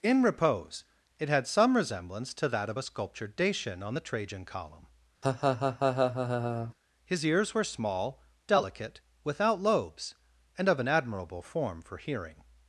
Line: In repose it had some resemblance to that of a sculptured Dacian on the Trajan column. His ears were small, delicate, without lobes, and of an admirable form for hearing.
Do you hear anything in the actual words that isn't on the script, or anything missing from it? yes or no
no